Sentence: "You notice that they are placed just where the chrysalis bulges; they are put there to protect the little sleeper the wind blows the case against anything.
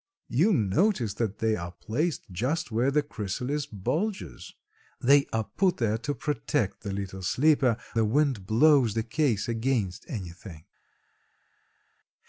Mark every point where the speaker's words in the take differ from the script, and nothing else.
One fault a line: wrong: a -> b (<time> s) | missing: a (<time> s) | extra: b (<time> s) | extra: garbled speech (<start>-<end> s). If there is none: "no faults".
no faults